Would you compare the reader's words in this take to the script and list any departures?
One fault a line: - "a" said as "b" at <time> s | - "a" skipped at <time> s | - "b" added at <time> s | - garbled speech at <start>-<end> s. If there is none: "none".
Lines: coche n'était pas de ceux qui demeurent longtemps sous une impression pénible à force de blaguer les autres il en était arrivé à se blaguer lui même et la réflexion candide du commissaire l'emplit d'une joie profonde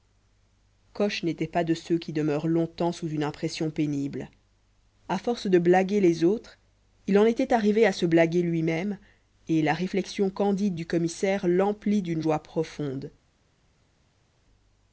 none